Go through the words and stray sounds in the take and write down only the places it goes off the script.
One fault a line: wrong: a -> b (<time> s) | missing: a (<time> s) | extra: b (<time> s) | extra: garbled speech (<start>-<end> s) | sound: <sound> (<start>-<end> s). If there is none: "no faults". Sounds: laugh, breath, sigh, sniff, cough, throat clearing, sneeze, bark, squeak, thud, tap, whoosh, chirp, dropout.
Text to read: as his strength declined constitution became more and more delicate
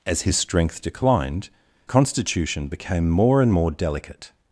no faults